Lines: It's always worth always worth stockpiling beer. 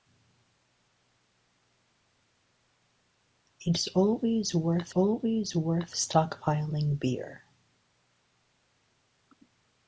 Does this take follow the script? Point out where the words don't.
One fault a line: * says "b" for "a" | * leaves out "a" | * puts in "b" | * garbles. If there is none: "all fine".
all fine